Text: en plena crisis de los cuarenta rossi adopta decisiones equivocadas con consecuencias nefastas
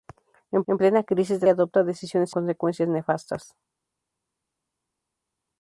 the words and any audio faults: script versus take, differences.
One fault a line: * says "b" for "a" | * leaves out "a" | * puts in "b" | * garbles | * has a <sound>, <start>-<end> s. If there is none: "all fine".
* puts in "en"
* leaves out "los cuarenta rossi"
* leaves out "equivocadas con"